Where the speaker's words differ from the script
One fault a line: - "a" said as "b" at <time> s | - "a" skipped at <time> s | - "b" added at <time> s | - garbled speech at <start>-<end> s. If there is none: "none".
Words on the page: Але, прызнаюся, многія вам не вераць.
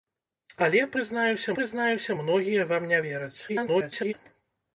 - "прызнаюся" added at 1.6 s
- garbled speech at 3.5-4.1 s